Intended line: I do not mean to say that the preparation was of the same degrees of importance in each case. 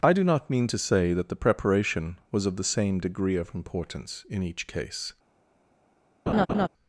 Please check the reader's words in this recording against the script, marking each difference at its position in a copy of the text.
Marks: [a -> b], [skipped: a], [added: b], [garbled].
I do not mean to say that the preparation was of the same [degrees -> degree] of importance in each case.